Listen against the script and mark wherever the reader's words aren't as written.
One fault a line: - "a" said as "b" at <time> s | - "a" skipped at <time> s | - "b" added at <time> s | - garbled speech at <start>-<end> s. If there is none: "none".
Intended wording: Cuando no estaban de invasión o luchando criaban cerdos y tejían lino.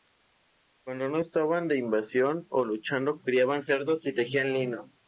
none